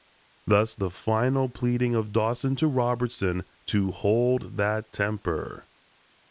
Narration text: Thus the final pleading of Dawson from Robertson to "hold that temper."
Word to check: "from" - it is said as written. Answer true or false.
false